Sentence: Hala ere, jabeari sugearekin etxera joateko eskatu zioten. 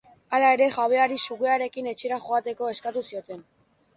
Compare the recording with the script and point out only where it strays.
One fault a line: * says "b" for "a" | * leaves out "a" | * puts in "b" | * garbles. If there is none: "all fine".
all fine